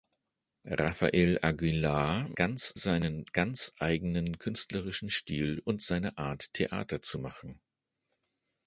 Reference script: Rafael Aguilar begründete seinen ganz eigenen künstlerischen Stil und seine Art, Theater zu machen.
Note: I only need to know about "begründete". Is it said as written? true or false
false